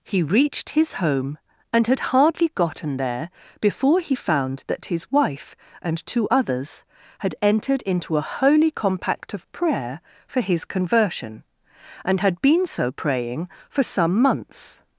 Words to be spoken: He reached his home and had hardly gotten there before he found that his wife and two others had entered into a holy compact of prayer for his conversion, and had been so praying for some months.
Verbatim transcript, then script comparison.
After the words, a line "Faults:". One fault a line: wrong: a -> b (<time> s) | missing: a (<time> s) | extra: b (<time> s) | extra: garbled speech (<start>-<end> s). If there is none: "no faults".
He reached his home and had hardly gotten there before he found that his wife and two others had entered into a holy compact of prayer for his conversion, and had been so praying for some months.
Faults:
no faults